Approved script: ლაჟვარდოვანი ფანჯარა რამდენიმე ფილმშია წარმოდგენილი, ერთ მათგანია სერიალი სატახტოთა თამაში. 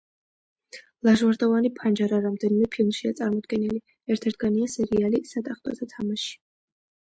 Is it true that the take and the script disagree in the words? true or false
false